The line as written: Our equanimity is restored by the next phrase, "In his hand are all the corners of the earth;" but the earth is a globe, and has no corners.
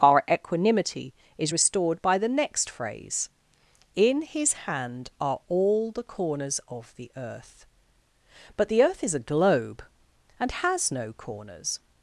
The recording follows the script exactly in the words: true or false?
true